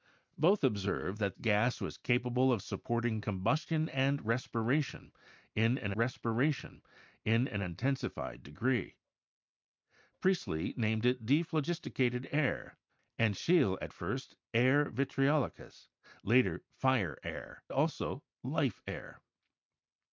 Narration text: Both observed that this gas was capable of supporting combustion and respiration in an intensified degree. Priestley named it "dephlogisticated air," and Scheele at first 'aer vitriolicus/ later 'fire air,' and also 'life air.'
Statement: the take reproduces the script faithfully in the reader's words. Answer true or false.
false